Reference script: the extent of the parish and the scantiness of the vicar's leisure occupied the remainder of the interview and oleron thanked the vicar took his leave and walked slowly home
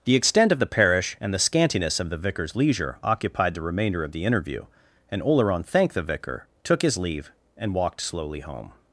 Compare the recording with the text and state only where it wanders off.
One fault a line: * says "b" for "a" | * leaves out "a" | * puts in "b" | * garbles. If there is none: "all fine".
all fine